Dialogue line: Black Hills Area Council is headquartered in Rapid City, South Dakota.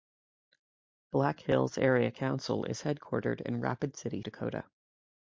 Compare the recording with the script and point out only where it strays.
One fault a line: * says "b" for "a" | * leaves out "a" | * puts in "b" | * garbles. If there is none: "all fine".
* leaves out "South"